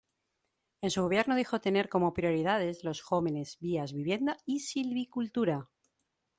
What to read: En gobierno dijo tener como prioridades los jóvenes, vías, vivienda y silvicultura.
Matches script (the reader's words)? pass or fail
fail